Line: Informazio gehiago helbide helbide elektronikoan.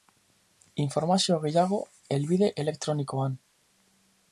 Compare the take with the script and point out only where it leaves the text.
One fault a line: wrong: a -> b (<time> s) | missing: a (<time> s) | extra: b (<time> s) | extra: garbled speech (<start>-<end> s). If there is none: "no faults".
missing: helbide (2.5 s)